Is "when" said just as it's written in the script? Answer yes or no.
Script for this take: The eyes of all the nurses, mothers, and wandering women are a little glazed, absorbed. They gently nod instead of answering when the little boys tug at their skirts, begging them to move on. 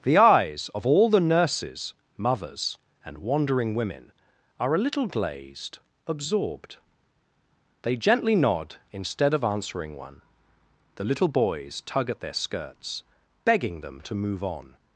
no